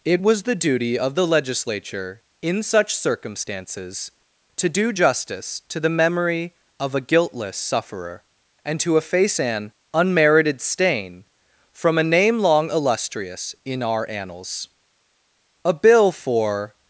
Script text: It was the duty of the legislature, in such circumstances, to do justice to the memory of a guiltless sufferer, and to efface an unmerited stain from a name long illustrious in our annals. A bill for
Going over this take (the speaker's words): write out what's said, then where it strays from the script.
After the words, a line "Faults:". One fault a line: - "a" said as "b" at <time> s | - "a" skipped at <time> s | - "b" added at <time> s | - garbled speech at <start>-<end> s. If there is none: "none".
It was the duty of the legislature, in such circumstances, to do justice to the memory of a guiltless sufferer, and to efface an unmerited stain from a name long illustrious in our annals. A bill for
Faults:
none